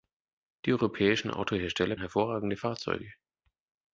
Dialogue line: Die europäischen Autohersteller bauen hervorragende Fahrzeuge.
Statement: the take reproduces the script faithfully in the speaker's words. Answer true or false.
false